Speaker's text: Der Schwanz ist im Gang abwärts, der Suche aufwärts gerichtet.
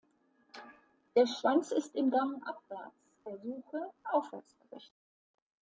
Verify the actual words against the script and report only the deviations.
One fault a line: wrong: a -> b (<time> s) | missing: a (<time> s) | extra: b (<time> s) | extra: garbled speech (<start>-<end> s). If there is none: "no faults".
no faults